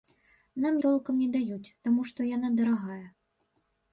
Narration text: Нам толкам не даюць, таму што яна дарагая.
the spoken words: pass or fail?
pass